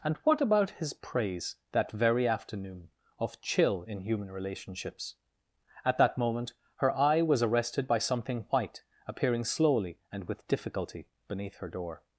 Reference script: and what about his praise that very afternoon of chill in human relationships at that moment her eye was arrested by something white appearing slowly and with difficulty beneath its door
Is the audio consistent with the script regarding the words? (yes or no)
no